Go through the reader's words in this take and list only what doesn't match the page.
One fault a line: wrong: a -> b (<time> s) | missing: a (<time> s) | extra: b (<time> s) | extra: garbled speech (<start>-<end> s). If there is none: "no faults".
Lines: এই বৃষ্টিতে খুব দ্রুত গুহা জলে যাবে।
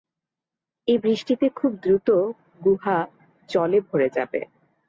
extra: ভরে (3.9 s)